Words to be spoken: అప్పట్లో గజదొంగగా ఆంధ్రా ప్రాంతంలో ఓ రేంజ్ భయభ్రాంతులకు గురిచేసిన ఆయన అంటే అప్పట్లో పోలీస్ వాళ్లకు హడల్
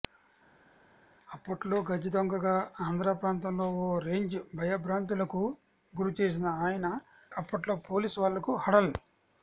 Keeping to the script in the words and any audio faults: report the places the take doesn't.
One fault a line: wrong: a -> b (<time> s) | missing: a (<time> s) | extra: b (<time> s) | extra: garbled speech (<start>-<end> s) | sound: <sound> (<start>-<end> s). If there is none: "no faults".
missing: అంటే (6.9 s)